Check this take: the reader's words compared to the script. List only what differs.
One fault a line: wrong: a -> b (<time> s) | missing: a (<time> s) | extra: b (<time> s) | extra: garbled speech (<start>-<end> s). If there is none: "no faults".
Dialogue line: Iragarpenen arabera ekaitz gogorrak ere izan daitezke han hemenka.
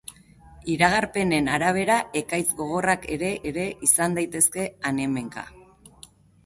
extra: ere (3.5 s)